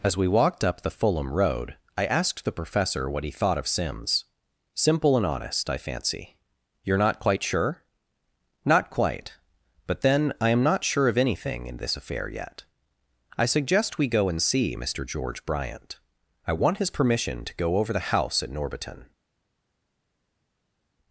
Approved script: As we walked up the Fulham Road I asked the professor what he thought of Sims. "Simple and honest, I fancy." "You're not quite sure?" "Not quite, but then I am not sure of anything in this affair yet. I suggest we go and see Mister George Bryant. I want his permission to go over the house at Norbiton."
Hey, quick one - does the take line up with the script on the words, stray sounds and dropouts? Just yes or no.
yes